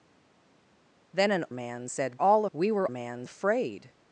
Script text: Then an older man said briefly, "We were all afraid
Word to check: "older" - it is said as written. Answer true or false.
false